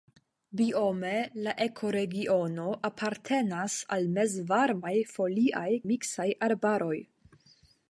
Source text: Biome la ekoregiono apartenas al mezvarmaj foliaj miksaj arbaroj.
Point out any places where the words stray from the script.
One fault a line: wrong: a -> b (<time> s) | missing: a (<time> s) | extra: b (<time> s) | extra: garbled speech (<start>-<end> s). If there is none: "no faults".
no faults